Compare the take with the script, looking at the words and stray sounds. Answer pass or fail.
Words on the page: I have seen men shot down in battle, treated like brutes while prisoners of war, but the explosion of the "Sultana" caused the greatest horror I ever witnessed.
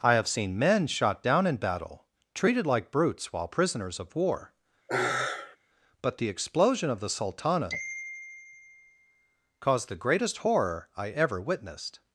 fail